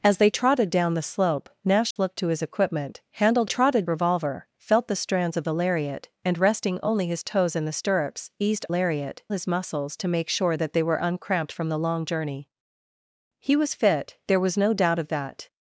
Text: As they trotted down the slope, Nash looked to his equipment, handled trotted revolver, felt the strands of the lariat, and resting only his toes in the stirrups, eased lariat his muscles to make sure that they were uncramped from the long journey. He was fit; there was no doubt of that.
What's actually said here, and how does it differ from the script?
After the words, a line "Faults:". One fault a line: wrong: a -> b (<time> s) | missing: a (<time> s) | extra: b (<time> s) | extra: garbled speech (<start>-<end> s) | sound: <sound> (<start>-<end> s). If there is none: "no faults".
As they trotted down the slope, Nash looked to his equipment, handled trotted revolver, felt the strands of the lariat, and resting only his toes in the stirrups, eased lariat his muscles to make sure that they were uncramped from the long journey. He was fit; there was no doubt of that.
Faults:
sound: dropout (1.9-2.0 s)